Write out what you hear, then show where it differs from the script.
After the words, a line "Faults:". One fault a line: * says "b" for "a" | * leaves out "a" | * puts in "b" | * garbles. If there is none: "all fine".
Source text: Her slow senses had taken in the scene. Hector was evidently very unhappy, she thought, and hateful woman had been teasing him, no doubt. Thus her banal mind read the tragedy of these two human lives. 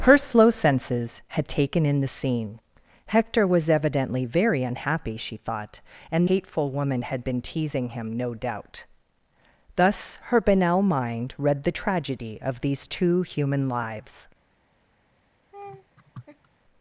Her slow senses had taken in the scene. Hector was evidently very unhappy, she thought, and hateful woman had been teasing him, no doubt. Thus her banal mind read the tragedy of these two human lives.
Faults:
all fine